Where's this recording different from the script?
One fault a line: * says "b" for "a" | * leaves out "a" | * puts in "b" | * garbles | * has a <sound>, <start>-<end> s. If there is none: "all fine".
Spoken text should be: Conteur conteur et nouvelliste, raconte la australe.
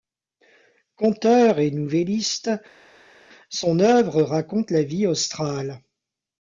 * leaves out "conteur"
* puts in "son œuvre"
* puts in "vie"